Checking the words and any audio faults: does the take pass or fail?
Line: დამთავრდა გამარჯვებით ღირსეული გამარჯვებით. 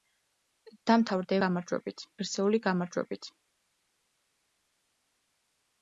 pass